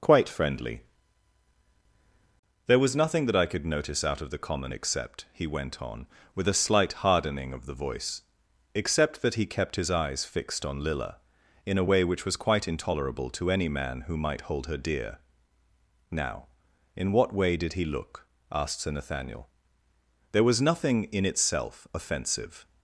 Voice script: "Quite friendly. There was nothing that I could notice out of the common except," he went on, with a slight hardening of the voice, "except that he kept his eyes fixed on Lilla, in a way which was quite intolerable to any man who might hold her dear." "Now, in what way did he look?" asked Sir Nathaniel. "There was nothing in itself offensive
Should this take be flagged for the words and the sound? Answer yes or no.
no